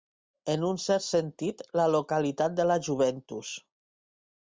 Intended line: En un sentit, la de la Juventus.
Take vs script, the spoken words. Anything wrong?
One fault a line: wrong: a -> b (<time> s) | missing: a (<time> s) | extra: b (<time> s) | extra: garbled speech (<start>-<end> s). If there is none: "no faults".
extra: cert (0.8 s)
extra: localitat (1.9 s)